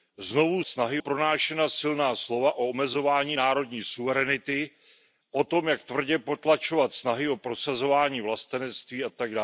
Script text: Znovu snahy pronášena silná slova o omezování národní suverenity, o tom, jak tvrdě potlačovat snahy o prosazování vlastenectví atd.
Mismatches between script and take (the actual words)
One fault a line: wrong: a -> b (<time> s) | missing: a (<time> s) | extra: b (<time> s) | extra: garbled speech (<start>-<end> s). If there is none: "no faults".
no faults